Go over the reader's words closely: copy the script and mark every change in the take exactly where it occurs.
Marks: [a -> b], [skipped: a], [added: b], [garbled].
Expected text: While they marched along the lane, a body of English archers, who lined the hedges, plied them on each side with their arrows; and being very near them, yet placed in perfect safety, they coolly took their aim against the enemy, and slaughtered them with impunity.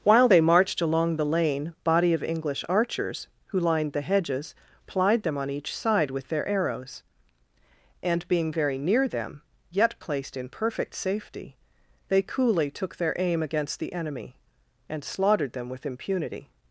While they marched along the lane, [skipped: a] body of English archers, who lined the hedges, plied them on each side with their arrows; and being very near them, yet placed in perfect safety, they coolly took their aim against the enemy, and slaughtered them with impunity.